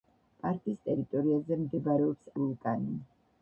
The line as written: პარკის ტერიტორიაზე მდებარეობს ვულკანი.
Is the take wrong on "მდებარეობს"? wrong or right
right